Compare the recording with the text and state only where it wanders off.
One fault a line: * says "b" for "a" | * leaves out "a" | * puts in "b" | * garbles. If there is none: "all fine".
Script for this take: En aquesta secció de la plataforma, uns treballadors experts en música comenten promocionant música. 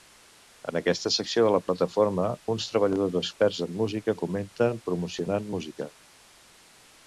all fine